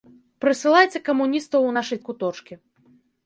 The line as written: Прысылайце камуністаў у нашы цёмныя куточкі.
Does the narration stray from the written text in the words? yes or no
yes